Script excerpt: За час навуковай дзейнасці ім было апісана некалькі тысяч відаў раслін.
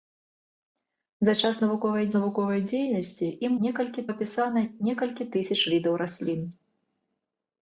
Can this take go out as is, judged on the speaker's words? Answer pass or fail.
fail